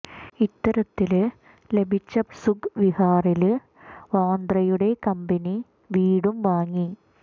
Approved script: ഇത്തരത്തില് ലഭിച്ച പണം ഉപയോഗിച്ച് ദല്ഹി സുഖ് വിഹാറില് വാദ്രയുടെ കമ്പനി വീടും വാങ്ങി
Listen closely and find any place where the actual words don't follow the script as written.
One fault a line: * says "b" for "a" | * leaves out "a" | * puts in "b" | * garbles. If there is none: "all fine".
* leaves out "പണം ഉപയോഗിച്ച് ദല്ഹി"